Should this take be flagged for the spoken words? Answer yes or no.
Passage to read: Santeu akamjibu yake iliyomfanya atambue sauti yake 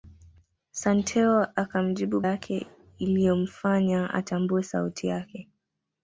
no